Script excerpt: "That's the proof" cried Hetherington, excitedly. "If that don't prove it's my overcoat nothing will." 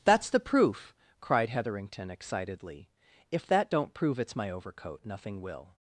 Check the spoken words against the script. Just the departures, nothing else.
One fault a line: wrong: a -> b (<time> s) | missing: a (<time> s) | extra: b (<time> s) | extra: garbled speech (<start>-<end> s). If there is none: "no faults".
no faults